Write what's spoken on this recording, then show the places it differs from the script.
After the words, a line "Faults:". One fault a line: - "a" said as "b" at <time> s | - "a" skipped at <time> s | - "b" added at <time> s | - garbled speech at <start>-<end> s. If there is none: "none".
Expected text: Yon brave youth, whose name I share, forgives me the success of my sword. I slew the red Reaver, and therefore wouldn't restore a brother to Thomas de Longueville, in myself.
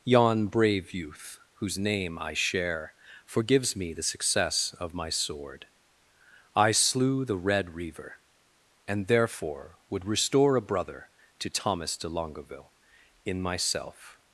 Yon brave youth, whose name I share, forgives me the success of my sword. I slew the red Reaver, and therefore would restore a brother to Thomas de Longueville, in myself.
Faults:
- "wouldn't" said as "would" at 9.9 s